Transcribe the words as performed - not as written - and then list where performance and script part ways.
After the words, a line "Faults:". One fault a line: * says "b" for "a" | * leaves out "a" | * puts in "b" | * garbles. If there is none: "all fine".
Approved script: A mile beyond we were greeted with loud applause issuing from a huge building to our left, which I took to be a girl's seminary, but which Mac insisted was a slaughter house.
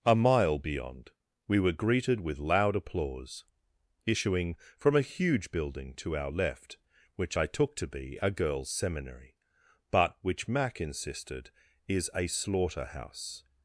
A mile beyond we were greeted with loud applause issuing from a huge building to our left, which I took to be a girl's seminary, but which Mac insisted is a slaughter house.
Faults:
* says "is" for "was"